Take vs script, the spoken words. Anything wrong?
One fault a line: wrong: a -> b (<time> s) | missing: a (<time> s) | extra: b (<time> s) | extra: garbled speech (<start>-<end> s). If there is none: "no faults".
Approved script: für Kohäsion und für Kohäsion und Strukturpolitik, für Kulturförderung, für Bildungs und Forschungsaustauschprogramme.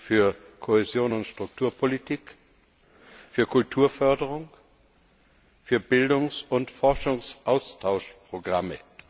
missing: für Kohäsion und (1.3 s)